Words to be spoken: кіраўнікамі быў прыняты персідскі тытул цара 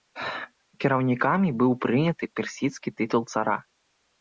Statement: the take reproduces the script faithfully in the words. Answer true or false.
true